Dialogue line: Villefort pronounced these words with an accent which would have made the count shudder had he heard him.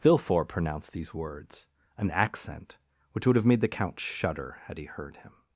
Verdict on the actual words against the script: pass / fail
fail